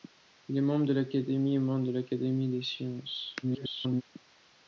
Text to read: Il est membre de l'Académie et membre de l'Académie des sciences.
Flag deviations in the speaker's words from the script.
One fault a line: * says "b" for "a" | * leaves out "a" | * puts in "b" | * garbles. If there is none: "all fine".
* garbles